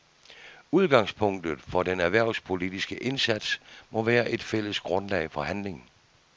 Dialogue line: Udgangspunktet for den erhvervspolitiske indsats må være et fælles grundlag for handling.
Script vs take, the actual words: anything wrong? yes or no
no